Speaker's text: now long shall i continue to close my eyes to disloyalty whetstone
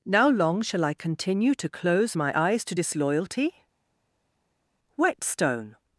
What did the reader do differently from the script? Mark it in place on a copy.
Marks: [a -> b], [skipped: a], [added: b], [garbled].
now long shall i continue to close my eyes to disloyalty whetstone